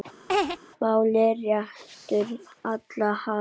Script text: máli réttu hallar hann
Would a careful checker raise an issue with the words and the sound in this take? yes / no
yes